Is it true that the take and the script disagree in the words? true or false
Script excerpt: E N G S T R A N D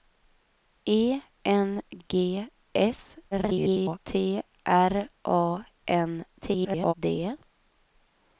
true